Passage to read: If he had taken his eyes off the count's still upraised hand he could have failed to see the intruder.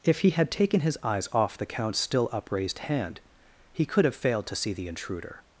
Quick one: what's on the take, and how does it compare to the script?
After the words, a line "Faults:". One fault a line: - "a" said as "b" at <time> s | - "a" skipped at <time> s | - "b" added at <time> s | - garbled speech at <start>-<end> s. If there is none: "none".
If he had taken his eyes off the count's still upraised hand he could have failed to see the intruder.
Faults:
none